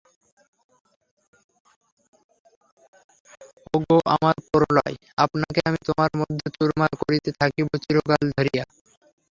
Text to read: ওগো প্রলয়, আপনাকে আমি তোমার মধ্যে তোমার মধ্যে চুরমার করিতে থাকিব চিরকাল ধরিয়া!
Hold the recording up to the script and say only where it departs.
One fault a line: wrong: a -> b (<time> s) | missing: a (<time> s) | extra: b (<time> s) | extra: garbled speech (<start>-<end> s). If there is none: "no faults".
extra: আমার (4.2 s)
missing: তোমার মধ্যে (6.5 s)